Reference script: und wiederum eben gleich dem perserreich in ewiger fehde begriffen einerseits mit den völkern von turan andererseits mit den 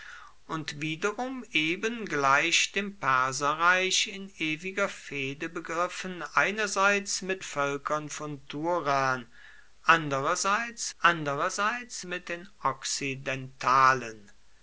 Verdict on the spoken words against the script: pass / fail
fail